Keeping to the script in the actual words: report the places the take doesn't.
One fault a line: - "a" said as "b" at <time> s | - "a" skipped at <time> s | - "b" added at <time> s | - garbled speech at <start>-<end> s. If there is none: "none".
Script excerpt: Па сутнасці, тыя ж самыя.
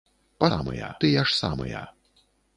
- "сутнасці" said as "самыя" at 0.5 s